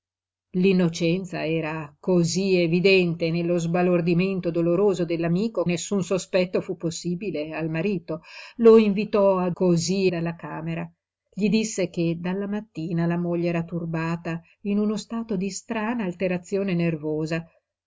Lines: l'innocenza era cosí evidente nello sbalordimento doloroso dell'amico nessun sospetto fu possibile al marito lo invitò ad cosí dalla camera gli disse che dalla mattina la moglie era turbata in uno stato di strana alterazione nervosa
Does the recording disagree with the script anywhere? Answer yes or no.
no